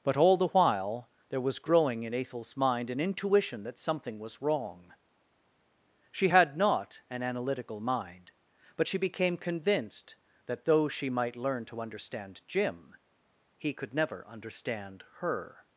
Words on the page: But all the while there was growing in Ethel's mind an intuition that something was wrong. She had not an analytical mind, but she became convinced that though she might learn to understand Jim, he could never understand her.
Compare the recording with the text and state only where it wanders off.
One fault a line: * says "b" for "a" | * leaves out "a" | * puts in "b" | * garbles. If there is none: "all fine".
all fine